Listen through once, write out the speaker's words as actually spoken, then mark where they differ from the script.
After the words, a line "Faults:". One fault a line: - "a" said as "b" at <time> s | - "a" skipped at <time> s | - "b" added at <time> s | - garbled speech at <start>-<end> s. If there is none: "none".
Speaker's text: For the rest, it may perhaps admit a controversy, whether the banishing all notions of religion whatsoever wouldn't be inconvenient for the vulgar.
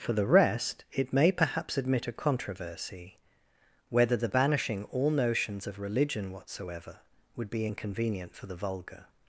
For the rest, it may perhaps admit a controversy, whether the banishing all notions of religion whatsoever would be inconvenient for the vulgar.
Faults:
- "wouldn't" said as "would" at 7.3 s